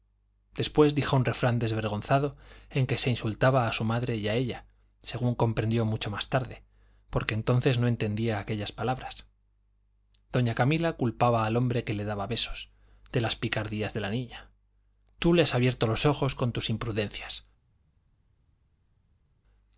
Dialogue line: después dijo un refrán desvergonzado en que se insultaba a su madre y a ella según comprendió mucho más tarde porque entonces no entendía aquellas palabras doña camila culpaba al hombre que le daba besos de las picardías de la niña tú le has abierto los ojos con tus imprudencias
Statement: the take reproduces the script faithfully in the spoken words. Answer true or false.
true